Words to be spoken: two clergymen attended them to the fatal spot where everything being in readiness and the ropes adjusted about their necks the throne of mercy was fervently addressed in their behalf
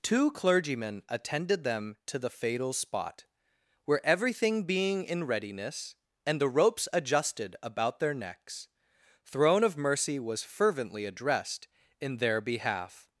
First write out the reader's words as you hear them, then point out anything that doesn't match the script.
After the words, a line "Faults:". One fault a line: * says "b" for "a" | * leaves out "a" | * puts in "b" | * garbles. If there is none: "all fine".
two clergymen attended them to the fatal spot where everything being in readiness and the ropes adjusted about their necks throne of mercy was fervently addressed in their behalf
Faults:
* leaves out "the"